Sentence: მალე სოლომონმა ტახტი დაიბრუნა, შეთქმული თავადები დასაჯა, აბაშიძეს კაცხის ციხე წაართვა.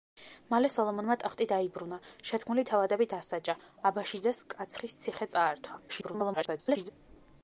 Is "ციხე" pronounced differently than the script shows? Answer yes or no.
no